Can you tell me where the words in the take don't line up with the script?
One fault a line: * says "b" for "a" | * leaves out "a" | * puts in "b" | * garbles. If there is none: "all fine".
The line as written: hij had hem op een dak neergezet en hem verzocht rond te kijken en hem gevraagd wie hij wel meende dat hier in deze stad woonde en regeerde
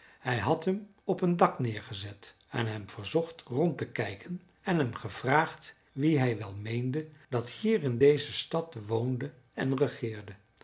all fine